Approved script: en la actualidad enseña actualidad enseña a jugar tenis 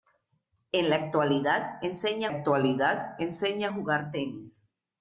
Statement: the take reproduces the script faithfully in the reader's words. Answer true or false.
true